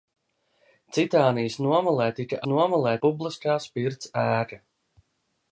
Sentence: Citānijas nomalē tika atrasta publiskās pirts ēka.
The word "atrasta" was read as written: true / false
false